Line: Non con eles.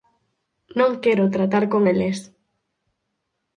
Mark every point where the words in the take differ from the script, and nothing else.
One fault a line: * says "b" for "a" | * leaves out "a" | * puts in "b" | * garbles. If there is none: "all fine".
* puts in "quero tratar"